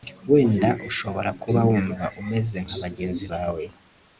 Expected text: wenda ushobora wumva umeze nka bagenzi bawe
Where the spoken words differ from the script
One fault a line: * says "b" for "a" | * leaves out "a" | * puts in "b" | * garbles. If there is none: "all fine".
* puts in "kuba"